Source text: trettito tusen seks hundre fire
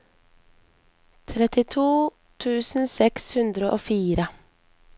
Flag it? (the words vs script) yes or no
yes